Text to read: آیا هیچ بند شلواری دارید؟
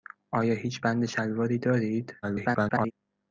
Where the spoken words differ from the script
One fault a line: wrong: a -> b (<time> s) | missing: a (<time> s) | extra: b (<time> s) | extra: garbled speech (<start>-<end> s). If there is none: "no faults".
extra: garbled speech (2.2-2.9 s)